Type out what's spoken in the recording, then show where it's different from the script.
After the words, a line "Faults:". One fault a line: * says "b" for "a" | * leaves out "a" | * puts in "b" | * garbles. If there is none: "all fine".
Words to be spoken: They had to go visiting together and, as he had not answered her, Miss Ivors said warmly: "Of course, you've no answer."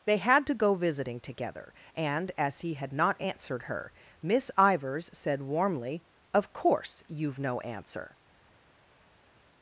They had to go visiting together and, as he had not answered her, Miss Ivors said warmly: "Of course, you've no answer."
Faults:
all fine